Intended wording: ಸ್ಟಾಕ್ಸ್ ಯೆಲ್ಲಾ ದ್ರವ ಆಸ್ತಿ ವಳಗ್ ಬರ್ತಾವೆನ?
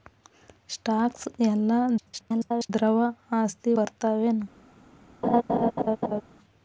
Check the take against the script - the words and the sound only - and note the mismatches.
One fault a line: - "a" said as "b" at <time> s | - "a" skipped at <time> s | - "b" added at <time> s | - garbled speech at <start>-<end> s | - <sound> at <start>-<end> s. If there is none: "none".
- garbled speech at 2.0-2.7 s
- "ವಳಗ್" skipped at 3.7 s
- laugh at 5.2-6.2 s